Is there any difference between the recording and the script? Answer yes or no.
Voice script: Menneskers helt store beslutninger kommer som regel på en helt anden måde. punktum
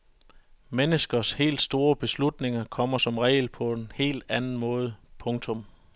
no